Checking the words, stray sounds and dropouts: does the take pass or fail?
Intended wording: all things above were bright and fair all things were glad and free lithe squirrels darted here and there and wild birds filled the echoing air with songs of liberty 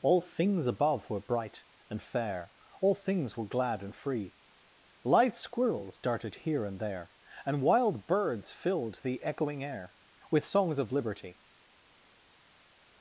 pass